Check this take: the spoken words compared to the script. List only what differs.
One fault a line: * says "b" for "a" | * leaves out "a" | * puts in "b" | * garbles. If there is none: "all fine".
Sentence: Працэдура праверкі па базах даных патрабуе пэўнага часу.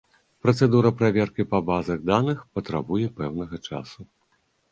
all fine